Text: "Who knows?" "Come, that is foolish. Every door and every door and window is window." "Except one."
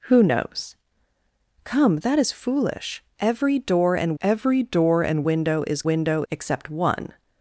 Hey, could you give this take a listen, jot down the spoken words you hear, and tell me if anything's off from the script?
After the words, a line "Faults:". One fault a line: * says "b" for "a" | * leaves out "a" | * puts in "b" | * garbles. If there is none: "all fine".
"Who knows?" "Come, that is foolish. Every door and every door and window is window." "Except one."
Faults:
all fine